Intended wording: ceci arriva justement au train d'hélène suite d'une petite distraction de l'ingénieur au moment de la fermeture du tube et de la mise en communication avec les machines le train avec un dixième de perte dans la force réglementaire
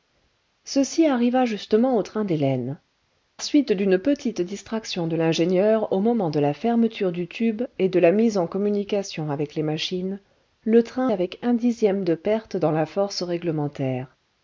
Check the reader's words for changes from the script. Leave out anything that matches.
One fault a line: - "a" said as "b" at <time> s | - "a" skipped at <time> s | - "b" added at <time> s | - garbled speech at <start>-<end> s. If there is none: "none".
none